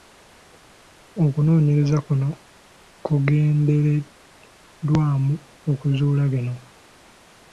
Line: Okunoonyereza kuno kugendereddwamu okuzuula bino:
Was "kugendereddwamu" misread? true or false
false